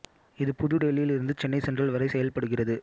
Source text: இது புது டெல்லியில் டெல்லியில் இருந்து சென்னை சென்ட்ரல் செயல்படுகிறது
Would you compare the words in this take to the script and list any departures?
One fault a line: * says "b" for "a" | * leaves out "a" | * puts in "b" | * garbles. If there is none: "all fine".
* leaves out "டெல்லியில்"
* puts in "வரை"